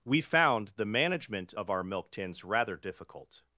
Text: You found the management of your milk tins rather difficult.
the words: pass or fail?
fail